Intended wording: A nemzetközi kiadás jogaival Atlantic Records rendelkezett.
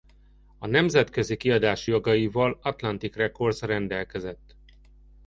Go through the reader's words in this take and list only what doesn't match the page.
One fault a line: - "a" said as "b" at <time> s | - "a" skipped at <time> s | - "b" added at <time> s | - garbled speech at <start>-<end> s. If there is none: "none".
none